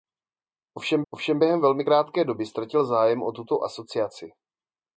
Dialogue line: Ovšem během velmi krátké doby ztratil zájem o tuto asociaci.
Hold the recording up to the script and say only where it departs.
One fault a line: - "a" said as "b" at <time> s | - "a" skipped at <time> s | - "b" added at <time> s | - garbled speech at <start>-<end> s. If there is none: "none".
- "ovšem" added at 1.1 s